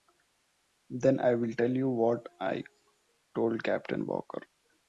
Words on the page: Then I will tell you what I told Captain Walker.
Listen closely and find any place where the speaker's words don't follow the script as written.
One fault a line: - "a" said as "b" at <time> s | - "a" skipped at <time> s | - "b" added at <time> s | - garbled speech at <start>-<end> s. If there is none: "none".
none